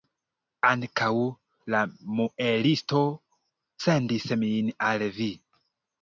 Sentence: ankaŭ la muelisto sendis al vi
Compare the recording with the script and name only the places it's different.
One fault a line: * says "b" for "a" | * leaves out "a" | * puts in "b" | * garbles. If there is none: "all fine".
* puts in "min"